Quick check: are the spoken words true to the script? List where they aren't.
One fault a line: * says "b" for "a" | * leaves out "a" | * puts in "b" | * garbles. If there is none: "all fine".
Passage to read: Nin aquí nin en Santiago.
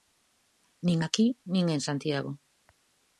all fine